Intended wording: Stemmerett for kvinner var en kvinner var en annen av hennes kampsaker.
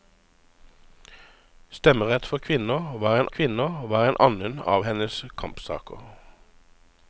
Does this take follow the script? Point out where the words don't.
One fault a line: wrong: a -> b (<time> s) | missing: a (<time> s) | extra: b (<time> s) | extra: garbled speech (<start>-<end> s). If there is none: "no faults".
no faults